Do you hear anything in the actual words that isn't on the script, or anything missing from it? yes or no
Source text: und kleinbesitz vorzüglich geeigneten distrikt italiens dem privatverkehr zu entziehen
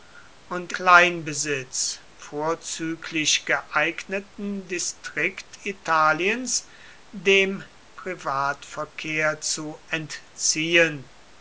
no